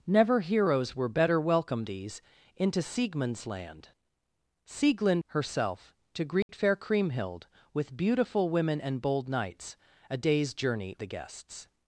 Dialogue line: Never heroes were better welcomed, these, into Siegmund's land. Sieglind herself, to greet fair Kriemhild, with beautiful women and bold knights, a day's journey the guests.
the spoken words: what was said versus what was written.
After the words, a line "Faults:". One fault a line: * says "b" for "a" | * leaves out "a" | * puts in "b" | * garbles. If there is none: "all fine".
Never heroes were better welcomed, these, into Siegmund's land. Sieglind herself, to greet fair Kriemhild, with beautiful women and bold knights, a day's journey the guests.
Faults:
all fine